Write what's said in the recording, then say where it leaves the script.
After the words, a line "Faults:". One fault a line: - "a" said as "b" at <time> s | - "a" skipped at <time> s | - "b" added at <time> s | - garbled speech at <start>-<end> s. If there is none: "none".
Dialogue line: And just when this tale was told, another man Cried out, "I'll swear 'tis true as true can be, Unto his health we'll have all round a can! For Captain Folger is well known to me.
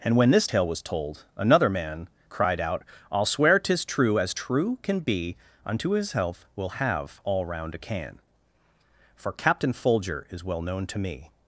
And when this tale was told, another man Cried out, "I'll swear 'tis true as true can be, Unto his health we'll have all round a can! For Captain Folger is well known to me.
Faults:
- "just" skipped at 0.2 s